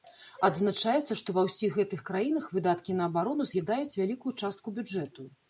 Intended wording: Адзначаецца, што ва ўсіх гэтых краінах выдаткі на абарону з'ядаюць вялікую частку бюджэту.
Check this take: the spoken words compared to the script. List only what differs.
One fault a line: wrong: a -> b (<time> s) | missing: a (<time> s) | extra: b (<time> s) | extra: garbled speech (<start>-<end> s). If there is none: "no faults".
no faults